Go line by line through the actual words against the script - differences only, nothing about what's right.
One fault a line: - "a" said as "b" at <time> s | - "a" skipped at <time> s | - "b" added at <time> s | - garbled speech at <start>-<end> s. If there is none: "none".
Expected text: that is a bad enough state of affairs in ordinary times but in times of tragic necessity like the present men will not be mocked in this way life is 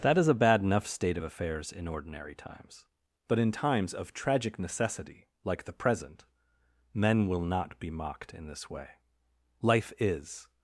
none